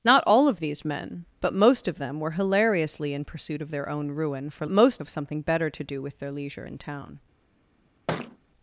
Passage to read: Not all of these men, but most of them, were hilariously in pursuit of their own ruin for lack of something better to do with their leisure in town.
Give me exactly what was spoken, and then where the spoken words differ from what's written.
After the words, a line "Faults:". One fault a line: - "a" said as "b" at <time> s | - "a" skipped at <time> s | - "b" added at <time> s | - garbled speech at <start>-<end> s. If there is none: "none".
Not all of these men, but most of them, were hilariously in pursuit of their own ruin for most of something better to do with their leisure in town.
Faults:
- "lack" said as "most" at 4.7 s